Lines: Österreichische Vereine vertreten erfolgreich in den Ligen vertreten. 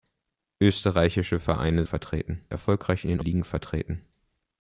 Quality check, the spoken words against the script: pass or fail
pass